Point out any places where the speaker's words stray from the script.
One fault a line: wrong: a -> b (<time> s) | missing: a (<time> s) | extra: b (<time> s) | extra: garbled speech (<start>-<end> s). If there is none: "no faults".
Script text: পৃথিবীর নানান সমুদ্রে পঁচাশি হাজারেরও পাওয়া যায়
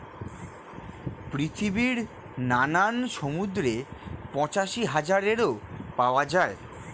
no faults